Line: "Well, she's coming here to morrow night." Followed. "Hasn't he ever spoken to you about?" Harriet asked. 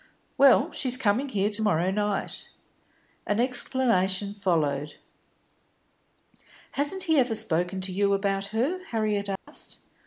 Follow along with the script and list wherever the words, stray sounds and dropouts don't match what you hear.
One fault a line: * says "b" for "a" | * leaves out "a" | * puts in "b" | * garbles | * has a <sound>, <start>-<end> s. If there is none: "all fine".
* puts in "An explanation"
* puts in "her"
* has a dropout, 9.4-9.5 s